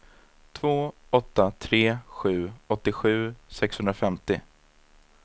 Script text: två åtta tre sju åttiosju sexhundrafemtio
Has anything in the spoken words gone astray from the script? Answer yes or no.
no